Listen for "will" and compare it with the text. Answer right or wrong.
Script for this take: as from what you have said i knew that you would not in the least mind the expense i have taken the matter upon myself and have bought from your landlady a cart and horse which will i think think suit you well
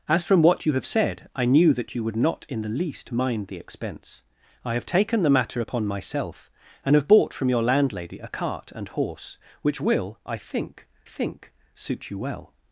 right